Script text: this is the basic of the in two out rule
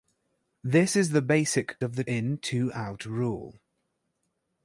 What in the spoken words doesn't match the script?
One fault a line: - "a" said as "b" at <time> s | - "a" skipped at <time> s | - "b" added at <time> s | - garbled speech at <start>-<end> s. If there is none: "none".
none